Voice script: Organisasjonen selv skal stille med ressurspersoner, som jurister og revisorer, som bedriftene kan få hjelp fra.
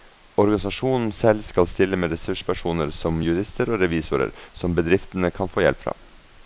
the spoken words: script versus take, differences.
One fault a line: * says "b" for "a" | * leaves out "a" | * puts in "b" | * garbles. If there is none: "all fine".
all fine